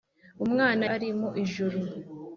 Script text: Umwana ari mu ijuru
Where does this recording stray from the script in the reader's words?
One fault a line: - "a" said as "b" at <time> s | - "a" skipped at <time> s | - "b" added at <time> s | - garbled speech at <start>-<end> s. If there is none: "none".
none